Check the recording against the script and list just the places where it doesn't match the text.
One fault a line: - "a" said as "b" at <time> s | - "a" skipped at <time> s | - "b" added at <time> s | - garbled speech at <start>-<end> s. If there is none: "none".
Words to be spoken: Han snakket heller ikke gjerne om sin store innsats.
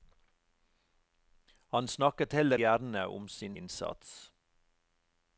- "ikke" skipped at 2.6 s
- "store" skipped at 3.6 s